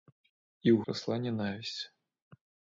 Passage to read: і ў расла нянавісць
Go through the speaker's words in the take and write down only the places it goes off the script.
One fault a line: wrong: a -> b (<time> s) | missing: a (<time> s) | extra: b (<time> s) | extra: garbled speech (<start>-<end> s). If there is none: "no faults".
no faults